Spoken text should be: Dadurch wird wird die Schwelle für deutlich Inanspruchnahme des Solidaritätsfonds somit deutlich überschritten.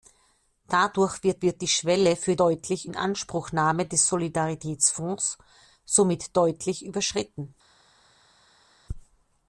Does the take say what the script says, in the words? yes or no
yes